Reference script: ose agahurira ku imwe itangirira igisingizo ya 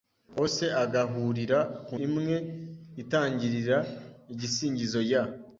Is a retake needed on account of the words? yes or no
no